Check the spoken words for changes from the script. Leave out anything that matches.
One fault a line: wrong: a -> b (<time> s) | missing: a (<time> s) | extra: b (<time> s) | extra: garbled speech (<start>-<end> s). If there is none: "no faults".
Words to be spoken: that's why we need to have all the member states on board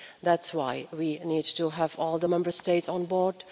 no faults